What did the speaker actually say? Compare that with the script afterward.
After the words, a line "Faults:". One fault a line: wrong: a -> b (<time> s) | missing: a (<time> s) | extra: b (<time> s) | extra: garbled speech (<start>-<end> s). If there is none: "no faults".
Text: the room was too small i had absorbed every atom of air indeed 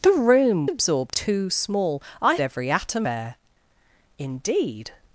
the room absorbed too small i every atom air indeed
Faults:
wrong: was -> absorbed (0.7 s)
missing: had absorbed (2.4 s)
missing: of (3.1 s)